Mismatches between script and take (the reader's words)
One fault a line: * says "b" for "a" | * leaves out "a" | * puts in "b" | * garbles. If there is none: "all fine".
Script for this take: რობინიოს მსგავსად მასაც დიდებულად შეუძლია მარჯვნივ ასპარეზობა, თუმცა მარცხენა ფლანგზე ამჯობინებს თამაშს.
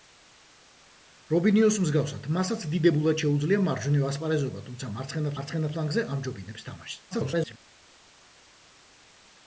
* puts in "მარცხენა"
* garbles